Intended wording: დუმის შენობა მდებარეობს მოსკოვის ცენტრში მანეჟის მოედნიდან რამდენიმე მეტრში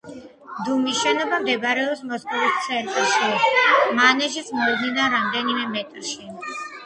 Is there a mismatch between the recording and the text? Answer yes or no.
no